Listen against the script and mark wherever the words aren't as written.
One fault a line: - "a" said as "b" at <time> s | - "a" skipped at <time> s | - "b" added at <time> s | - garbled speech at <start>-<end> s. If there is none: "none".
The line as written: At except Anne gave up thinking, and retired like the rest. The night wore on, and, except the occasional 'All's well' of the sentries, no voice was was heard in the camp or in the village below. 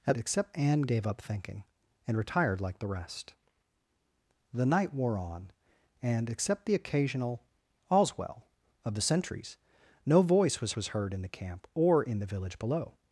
none